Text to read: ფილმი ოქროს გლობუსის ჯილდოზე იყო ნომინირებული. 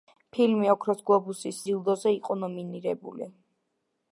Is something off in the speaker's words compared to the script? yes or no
no